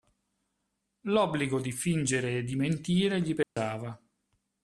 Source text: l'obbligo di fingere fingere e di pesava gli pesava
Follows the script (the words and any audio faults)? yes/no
no